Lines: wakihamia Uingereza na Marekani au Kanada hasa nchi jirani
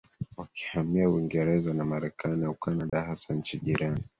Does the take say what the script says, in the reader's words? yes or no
yes